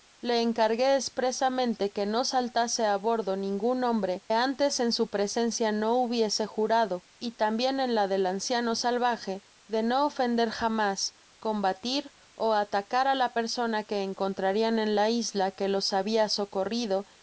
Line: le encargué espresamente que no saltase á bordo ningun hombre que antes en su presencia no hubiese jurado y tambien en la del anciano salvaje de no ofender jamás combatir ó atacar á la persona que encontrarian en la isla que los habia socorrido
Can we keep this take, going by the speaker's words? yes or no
no